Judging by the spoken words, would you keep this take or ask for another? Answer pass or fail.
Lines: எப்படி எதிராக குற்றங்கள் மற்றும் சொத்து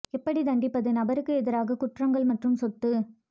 fail